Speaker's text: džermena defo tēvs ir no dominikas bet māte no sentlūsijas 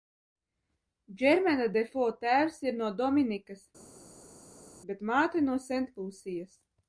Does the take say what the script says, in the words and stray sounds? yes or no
yes